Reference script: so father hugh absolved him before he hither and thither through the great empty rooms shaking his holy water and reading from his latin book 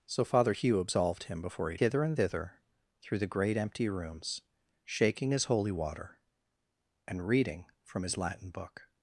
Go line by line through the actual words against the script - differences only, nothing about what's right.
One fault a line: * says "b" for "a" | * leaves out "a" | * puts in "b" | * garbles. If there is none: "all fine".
all fine